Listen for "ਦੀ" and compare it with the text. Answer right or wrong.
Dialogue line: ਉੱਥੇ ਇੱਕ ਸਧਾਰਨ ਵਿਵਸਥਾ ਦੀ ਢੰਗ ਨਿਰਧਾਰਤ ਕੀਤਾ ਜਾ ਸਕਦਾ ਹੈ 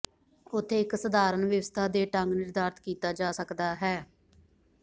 wrong